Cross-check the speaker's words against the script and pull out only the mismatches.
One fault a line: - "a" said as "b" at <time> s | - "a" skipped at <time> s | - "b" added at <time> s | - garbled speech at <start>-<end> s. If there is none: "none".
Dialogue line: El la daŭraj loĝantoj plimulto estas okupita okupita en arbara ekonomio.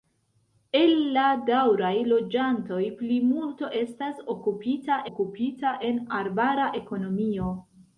none